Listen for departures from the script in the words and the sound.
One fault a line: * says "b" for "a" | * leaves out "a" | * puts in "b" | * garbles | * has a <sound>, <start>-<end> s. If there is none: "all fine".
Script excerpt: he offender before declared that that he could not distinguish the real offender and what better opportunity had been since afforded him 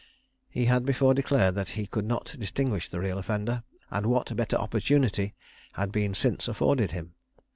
* says "had" for "offender"
* leaves out "that"